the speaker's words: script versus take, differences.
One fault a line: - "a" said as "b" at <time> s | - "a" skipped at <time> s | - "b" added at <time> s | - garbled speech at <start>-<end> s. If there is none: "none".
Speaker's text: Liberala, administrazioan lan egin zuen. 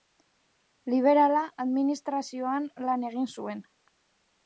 none